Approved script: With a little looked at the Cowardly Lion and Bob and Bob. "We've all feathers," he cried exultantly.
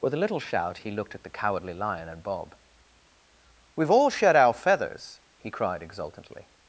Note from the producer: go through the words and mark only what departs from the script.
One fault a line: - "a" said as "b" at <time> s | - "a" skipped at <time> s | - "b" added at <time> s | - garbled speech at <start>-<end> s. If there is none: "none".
- "shout he" added at 0.4 s
- "and Bob We've all" said as "We've all shed our" at 3.8 s